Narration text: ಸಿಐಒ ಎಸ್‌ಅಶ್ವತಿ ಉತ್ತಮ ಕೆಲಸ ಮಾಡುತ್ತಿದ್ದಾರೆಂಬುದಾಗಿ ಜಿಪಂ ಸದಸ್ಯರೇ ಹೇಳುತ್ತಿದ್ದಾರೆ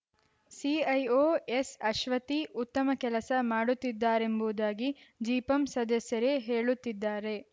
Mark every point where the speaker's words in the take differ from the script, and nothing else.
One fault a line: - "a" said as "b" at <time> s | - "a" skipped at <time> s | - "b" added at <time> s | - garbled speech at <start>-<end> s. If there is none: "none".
none